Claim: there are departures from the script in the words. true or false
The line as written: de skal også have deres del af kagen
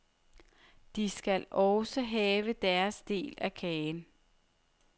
false